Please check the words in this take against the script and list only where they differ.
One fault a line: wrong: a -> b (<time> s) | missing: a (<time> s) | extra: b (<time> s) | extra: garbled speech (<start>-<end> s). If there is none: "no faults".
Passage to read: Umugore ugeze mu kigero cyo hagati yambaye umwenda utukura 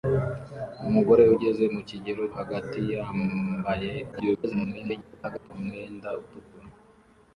missing: cyo (2.2 s)
extra: garbled speech (4.1-5.5 s)